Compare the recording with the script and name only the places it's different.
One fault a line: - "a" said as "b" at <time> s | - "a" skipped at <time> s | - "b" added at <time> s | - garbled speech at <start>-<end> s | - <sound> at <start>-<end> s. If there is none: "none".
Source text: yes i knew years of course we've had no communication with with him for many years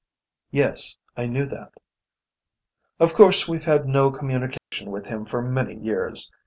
- "years" said as "that" at 1.4 s
- dropout at 4.6-4.7 s
- "with" skipped at 5.0 s